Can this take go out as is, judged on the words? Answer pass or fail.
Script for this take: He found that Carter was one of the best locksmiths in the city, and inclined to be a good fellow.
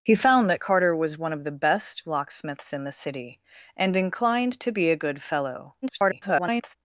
fail